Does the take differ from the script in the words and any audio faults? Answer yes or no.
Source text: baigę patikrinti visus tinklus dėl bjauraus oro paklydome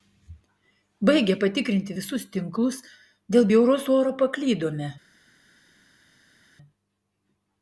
no